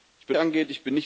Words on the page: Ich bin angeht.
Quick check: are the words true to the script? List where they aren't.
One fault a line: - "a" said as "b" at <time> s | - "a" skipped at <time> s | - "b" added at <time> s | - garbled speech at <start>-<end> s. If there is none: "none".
none